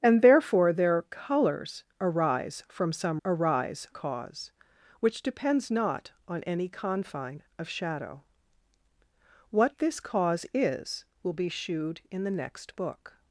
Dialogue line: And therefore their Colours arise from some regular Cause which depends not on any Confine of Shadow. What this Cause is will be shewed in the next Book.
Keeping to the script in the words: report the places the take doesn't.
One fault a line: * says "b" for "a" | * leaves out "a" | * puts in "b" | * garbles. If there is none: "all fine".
* says "arise" for "regular"